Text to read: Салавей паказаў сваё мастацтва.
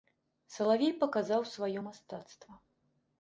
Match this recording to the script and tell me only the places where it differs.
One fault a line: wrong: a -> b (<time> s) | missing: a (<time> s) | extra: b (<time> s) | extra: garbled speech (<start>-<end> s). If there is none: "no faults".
no faults